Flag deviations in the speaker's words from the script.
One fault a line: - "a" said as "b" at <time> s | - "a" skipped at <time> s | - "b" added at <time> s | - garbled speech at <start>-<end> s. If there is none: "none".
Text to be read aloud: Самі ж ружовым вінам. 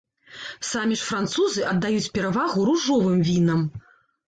- "французы аддаюць перавагу" added at 1.1 s